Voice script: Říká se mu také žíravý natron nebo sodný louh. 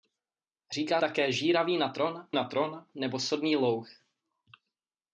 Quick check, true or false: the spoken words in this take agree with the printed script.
false